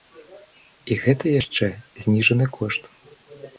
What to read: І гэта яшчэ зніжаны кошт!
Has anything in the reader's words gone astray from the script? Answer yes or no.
no